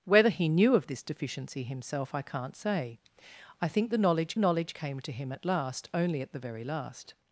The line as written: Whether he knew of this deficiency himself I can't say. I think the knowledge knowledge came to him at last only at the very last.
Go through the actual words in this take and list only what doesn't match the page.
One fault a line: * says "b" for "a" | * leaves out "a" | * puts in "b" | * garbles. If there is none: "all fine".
all fine